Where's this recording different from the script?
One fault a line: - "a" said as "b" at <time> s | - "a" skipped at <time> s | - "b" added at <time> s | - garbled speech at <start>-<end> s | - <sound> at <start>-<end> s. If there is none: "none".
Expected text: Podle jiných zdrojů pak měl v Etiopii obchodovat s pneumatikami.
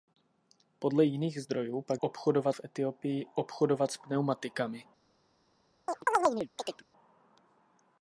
- "měl" said as "obchodovat" at 2.0 s
- chirp at 5.9-6.8 s